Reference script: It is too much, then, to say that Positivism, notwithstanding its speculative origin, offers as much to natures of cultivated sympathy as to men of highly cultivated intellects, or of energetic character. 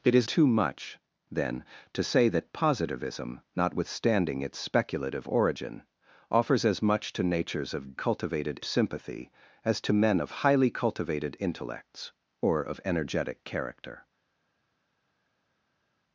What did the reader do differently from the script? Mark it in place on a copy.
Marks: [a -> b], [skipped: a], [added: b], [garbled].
It is too much, then, to say that Positivism, notwithstanding its speculative origin, offers as much to natures of cultivated sympathy as to men of highly cultivated intellects, or of energetic character.